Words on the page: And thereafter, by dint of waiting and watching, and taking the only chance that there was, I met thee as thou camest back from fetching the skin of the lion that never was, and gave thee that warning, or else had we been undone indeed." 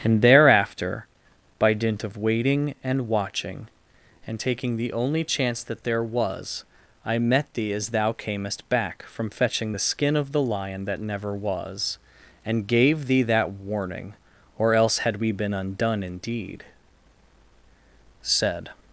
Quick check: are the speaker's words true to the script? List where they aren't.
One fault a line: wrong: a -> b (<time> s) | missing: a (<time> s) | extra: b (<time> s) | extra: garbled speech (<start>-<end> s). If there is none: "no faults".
extra: Said (18.2 s)